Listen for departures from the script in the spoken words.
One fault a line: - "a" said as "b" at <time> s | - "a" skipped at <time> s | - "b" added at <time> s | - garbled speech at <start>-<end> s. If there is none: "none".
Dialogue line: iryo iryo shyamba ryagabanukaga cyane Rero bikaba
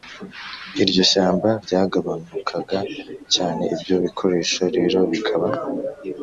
- "iryo" skipped at 1.0 s
- "Ibyo bikoresho" added at 3.7 s